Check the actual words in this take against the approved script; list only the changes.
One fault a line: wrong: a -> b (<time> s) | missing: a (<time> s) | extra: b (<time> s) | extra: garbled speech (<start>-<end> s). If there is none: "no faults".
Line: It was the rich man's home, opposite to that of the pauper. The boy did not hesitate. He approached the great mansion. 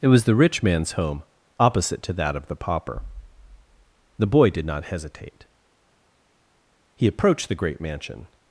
no faults